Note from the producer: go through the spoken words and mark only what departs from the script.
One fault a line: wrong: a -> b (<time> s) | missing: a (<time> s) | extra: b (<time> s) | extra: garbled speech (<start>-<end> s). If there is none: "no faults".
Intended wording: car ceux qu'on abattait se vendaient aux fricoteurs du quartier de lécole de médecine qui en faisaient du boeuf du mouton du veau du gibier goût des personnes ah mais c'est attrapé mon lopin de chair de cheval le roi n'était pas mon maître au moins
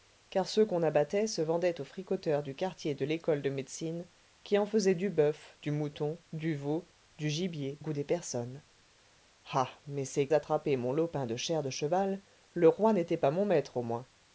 no faults